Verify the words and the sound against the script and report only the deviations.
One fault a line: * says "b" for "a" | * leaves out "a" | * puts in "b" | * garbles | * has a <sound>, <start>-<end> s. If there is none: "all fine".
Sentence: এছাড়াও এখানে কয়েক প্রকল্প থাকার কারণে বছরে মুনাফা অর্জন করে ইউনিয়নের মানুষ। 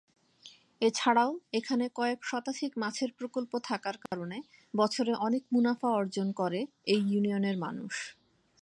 * puts in "শতাধিক মাছের"
* has a dropout, 4.1-4.1 s
* puts in "অনেক"
* puts in "এই"